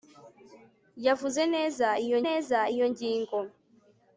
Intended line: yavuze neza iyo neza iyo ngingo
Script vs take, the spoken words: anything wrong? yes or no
no